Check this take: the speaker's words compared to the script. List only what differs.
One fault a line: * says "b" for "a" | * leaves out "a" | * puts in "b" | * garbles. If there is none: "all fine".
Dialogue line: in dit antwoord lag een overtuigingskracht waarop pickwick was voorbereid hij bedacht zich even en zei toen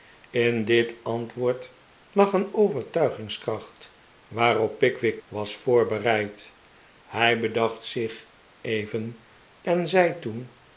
all fine